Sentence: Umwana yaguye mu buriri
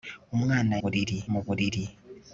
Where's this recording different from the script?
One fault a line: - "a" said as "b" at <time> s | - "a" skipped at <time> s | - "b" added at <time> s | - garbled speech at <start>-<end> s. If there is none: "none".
- "yaguye" said as "buriri" at 0.8 s